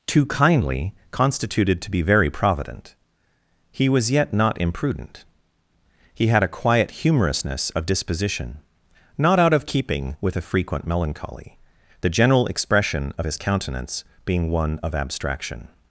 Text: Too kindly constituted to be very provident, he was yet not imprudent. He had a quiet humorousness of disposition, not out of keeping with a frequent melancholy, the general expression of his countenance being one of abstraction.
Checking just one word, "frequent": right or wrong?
right